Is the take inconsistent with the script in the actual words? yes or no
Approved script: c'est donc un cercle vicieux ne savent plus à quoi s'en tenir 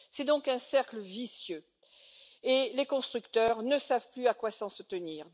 yes